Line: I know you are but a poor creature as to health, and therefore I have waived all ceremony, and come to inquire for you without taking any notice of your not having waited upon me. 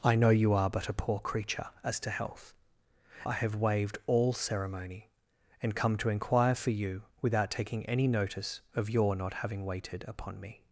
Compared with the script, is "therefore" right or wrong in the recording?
wrong